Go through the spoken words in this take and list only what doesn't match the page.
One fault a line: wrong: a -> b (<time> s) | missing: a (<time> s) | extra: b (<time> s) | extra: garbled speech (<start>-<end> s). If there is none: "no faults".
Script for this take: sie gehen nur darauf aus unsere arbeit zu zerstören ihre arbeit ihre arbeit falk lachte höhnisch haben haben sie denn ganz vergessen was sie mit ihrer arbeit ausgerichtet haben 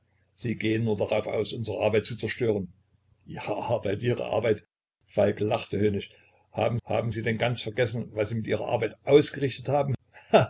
no faults